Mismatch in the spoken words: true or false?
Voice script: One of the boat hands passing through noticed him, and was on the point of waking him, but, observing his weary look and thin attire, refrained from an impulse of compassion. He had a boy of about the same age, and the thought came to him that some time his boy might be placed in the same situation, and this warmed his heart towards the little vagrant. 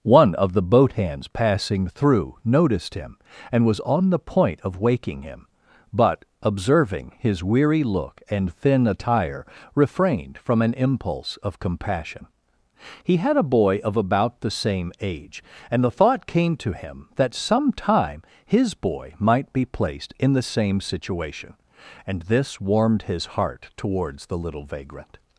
false